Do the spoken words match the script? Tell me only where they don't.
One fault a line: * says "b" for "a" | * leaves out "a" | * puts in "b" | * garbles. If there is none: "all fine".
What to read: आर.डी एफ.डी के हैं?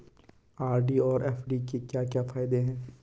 * puts in "और"
* puts in "क्या क्या फायदे"